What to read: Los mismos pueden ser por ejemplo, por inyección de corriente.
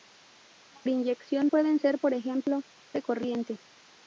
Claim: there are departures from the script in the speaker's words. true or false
true